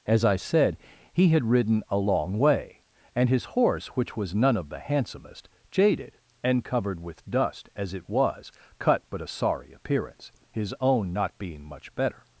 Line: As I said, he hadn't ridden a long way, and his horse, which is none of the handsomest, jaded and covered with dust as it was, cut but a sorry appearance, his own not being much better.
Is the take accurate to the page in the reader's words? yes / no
no